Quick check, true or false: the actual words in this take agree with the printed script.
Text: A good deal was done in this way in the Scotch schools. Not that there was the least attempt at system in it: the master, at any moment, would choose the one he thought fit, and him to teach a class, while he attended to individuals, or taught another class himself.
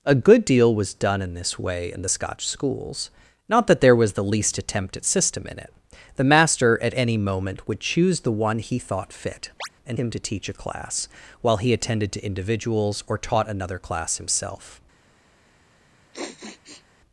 true